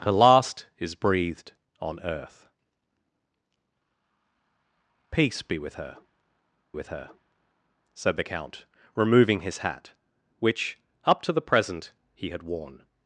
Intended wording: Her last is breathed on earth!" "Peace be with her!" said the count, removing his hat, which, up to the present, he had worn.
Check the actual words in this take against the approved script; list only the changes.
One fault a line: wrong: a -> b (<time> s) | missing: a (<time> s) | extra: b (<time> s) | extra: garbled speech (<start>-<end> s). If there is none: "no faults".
extra: with her (6.7 s)